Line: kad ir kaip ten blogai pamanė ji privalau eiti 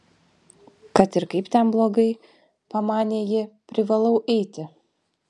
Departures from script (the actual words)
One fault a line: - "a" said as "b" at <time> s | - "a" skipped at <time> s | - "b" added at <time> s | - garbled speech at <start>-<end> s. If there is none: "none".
none